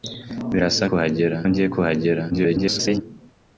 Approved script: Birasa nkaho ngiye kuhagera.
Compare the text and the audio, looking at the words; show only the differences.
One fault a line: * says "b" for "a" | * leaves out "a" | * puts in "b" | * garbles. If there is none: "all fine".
* says "kuhagera" for "nkaho"
* garbles